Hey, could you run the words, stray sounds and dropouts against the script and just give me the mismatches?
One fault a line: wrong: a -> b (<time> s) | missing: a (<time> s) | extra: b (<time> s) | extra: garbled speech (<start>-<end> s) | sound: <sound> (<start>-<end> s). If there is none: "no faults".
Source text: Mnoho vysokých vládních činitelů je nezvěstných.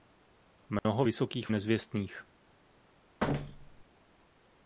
sound: dropout (0.8-0.9 s)
missing: vládních činitelů je (1.5 s)
sound: thud (3.2-3.8 s)